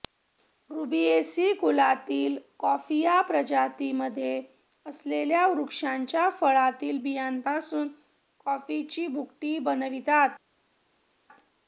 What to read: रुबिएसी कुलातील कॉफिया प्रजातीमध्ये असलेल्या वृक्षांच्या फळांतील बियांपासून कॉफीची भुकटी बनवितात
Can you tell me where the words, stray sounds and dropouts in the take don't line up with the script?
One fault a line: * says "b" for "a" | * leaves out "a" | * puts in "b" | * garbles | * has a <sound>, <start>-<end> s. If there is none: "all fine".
all fine